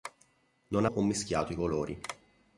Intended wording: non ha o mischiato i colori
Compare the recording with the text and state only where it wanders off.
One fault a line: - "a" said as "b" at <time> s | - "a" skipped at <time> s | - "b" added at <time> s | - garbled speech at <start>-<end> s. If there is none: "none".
none